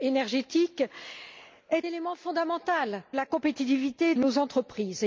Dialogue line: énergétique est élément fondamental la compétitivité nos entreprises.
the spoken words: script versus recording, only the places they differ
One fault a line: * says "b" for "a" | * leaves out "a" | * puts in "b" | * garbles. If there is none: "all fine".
all fine